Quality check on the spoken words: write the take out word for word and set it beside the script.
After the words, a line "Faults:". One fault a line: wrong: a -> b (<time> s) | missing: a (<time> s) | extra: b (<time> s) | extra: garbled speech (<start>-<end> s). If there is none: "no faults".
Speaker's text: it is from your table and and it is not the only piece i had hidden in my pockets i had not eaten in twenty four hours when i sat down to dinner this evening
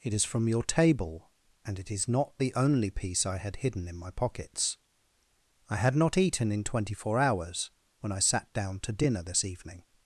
it is from your table and it is not the only piece i had hidden in my pockets i had not eaten in twenty four hours when i sat down to dinner this evening
Faults:
missing: and (1.8 s)